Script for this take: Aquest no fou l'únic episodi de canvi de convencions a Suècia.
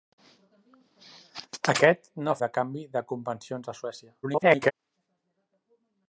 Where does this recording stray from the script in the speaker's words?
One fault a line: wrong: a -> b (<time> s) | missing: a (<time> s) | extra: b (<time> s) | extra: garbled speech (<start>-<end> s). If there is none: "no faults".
missing: fou l'únic episodi (2.4 s)
extra: garbled speech (4.2-4.7 s)